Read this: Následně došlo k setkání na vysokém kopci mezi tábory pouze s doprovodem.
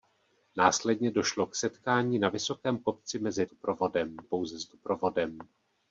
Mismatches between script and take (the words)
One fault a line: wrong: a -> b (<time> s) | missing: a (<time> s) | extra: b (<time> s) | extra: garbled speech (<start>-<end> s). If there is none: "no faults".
wrong: tábory -> doprovodem (3.5 s)